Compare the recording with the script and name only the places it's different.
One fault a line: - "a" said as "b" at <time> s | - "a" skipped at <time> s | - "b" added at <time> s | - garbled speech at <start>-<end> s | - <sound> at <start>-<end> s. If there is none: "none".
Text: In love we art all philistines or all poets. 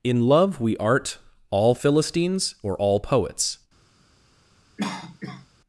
- cough at 4.8-5.5 s